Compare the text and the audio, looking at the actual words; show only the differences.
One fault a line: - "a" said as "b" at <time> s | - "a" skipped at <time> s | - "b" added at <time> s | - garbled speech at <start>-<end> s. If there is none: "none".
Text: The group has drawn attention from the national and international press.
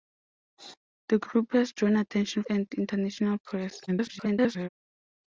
- "from the national" skipped at 2.4 s
- garbled speech at 3.9-4.7 s